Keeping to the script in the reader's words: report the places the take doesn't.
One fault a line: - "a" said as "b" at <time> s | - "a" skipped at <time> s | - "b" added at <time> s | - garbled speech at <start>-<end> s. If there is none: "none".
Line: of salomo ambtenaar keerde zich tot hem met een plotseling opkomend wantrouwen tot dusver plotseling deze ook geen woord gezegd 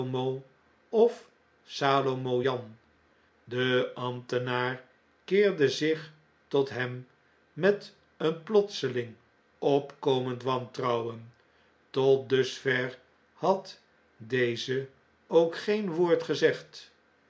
- "jan de" added at 2.4 s
- "plotseling" said as "had" at 13.3 s